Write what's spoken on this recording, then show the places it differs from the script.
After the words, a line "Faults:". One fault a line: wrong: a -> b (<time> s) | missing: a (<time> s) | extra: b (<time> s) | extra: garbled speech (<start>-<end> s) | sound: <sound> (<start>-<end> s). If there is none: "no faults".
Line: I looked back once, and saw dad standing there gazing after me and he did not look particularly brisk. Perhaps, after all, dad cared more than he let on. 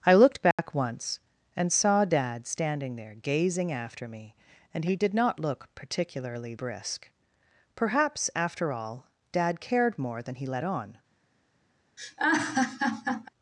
I looked back once, and saw dad standing there gazing after me and he did not look particularly brisk. Perhaps, after all, dad cared more than he let on.
Faults:
sound: dropout (0.5-0.6 s)
sound: laugh (12.0-13.3 s)